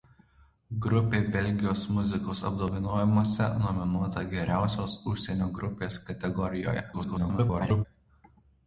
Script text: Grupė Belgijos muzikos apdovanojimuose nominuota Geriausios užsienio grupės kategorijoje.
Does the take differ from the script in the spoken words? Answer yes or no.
yes